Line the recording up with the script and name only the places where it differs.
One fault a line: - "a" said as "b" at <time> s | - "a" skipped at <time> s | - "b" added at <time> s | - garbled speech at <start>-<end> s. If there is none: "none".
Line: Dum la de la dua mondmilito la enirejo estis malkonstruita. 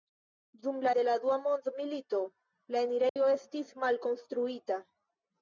none